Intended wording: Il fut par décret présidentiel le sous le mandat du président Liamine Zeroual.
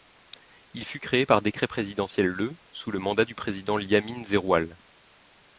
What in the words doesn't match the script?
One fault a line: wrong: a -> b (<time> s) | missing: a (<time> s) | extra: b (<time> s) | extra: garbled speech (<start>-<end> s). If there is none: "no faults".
extra: créé (1.0 s)